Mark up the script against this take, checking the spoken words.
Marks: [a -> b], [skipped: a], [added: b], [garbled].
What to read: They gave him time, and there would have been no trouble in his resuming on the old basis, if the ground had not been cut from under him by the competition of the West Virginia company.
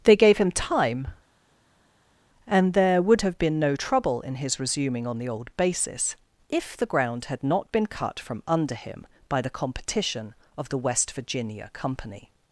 They gave him time, and there would have been no trouble in his resuming on the old basis, if the ground had not been cut from under him by the competition of the West Virginia company.